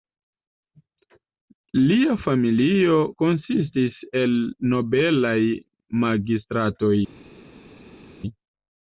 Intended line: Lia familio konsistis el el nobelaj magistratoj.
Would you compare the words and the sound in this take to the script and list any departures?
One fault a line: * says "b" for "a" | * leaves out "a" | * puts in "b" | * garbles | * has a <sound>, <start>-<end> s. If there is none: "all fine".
* leaves out "el"